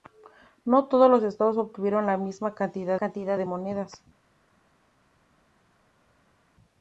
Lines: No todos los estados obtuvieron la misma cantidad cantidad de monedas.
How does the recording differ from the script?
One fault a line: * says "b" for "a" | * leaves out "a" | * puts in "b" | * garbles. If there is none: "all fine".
all fine